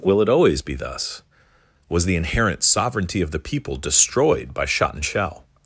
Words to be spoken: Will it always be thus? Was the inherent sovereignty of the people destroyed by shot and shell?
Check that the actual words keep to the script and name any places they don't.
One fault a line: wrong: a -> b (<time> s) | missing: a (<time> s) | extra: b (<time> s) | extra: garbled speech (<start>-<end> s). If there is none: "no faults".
no faults